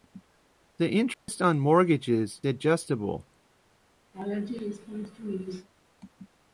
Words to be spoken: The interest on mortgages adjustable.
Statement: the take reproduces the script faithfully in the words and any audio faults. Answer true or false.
false